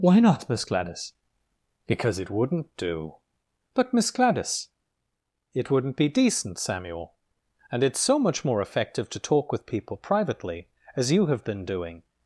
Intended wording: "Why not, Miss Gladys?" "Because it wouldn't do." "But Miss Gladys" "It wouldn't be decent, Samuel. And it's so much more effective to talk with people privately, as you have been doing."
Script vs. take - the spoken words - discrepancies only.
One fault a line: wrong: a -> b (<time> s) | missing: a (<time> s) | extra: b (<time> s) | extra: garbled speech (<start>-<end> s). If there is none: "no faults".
no faults